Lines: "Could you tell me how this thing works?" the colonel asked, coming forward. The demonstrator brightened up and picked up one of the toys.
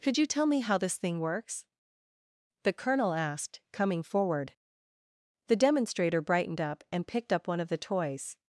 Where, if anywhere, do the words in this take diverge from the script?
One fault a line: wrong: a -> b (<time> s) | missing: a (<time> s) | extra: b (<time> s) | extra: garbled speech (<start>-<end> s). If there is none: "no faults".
no faults